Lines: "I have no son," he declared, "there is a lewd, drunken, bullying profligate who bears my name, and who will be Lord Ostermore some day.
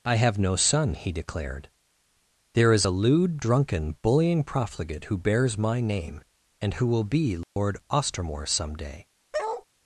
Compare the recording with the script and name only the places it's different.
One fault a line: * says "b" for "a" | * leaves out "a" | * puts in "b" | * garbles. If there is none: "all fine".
all fine